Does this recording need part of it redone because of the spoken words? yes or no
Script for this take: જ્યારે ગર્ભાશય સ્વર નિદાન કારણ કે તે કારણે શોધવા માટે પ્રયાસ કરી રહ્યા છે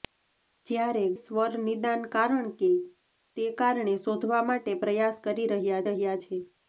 yes